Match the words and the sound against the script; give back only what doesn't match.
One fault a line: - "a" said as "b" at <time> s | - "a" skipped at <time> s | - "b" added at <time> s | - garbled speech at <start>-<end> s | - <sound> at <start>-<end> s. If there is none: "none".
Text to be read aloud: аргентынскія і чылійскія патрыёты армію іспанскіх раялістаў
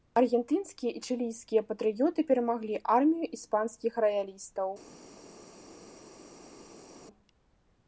- "перамаглі" added at 2.3 s